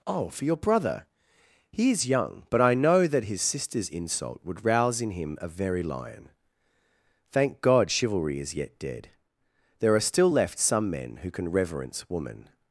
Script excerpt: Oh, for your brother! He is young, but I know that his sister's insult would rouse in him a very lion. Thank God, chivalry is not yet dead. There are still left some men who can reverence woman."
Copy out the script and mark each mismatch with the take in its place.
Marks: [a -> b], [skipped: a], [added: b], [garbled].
Oh, for your brother! He is young, but I know that his sister's insult would rouse in him a very lion. Thank God, chivalry is [skipped: not] yet dead. There are still left some men who can reverence woman."